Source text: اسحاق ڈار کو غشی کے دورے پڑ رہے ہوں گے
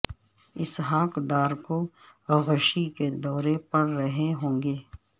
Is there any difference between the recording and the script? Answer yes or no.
no